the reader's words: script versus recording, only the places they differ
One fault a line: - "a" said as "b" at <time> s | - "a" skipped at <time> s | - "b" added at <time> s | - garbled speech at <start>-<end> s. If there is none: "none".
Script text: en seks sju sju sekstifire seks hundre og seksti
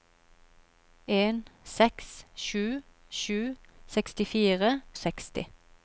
- "seks hundre" skipped at 4.7 s